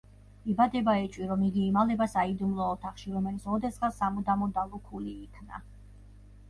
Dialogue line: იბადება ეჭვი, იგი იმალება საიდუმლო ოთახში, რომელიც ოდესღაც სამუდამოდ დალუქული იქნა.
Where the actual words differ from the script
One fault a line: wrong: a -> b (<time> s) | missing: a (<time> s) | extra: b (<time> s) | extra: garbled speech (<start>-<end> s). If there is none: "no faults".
extra: რომ (1.3 s)